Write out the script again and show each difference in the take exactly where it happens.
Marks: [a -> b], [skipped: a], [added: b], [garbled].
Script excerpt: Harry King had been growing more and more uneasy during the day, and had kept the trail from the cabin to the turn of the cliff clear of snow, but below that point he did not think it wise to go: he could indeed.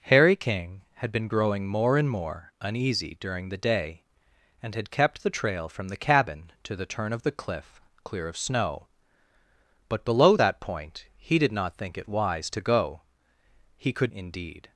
Harry King had been growing more and more uneasy during the day, and had kept the trail from the cabin to the turn of the cliff clear of snow, but below that point he did not think it wise to go: he could indeed.